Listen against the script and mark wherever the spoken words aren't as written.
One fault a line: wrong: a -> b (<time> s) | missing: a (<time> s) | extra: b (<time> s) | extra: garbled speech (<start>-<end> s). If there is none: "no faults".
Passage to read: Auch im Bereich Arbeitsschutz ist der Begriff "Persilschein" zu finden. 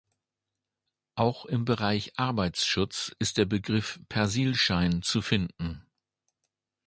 no faults